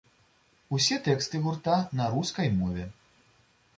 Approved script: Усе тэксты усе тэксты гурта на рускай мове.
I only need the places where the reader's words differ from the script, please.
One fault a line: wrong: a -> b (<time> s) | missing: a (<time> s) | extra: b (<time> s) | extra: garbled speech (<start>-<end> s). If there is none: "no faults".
missing: усе тэксты (1.4 s)